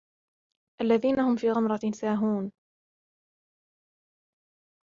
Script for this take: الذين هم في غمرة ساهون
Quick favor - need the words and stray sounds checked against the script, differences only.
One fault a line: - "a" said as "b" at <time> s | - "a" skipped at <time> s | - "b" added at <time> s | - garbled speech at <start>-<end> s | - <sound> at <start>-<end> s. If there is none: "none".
none